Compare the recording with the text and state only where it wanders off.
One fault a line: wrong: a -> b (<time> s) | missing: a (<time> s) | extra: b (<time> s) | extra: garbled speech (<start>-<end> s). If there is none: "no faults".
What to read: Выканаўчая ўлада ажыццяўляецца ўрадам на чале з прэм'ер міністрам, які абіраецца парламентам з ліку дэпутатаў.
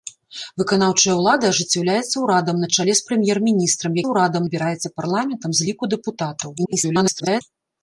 wrong: які -> ўрадам (4.1 s)
extra: garbled speech (6.6-7.4 s)